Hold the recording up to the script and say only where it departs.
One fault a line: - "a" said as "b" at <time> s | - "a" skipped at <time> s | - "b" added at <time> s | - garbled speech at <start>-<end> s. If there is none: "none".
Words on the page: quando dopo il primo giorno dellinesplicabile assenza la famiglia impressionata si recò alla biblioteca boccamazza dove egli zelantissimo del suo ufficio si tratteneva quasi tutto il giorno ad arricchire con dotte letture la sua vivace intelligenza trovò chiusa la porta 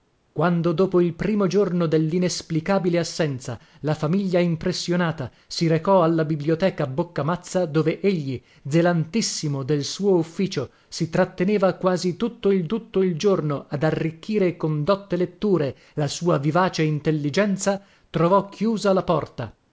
- "tutto il" added at 12.6 s